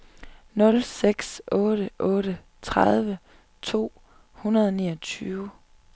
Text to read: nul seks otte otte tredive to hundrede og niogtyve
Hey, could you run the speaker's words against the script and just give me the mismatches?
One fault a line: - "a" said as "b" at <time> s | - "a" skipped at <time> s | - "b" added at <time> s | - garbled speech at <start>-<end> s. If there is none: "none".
none